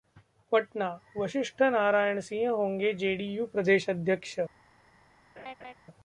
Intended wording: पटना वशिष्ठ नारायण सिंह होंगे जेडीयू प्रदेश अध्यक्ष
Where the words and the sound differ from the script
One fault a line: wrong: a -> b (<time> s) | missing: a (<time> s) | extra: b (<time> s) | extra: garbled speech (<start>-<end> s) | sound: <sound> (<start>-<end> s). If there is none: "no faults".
sound: laugh (5.4-5.7 s)